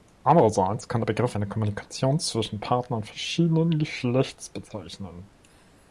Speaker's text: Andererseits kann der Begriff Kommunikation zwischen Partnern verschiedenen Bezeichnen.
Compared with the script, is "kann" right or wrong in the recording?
right